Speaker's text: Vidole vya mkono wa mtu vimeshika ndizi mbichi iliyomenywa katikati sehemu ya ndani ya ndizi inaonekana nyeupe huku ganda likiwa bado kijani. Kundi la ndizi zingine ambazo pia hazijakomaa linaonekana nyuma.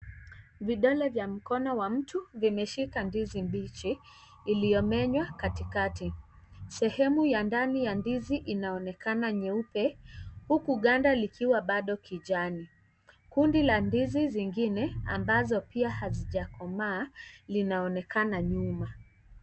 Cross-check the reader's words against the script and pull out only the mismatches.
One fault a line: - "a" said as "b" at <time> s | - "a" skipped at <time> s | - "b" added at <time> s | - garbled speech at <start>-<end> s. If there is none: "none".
none